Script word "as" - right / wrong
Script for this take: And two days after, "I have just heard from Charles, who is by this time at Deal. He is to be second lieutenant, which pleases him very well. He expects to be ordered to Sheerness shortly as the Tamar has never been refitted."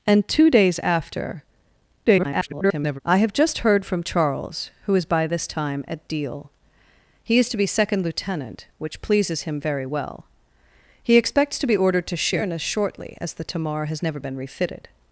right